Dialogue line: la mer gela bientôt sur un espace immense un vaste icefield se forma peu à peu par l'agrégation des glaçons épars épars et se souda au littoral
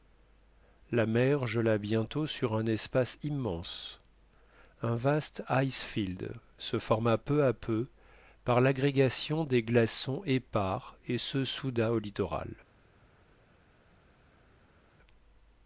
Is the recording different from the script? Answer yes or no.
yes